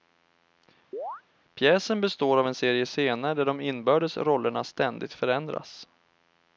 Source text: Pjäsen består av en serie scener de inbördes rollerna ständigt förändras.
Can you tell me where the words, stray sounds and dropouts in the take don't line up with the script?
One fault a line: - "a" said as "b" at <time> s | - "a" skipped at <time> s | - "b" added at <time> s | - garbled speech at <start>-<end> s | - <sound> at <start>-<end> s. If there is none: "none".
- chirp at 0.9-1.2 s
- "där" added at 3.3 s